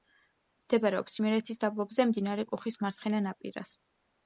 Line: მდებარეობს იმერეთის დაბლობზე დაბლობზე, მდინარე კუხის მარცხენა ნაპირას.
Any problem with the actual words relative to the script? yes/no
yes